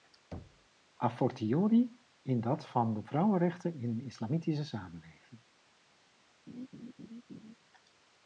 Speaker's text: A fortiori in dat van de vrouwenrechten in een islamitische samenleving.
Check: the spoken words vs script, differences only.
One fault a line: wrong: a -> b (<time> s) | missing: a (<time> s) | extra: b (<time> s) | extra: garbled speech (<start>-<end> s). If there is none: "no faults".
no faults